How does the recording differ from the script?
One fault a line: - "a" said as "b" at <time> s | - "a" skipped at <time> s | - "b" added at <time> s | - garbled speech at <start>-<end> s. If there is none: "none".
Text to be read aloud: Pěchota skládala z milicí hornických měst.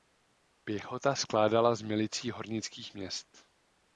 none